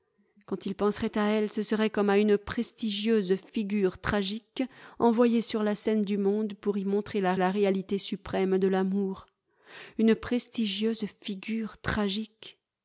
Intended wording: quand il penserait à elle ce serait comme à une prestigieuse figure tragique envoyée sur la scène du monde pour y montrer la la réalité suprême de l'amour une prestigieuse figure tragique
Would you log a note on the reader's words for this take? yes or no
no